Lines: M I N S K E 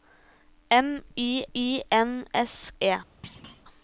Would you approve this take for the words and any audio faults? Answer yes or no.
no